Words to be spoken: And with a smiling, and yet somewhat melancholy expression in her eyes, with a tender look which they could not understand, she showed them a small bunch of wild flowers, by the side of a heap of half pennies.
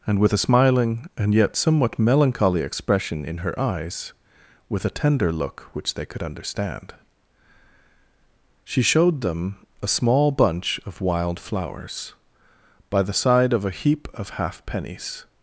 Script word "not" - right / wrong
wrong